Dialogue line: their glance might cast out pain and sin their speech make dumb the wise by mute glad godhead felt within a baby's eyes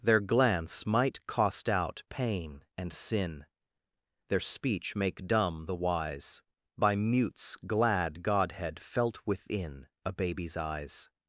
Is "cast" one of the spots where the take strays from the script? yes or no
yes